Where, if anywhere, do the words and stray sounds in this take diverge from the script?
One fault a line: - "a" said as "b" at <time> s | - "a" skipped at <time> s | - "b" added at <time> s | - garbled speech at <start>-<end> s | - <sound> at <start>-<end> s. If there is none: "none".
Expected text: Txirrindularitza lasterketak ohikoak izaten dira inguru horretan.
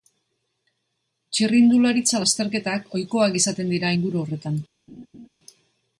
- laugh at 4.9-5.3 s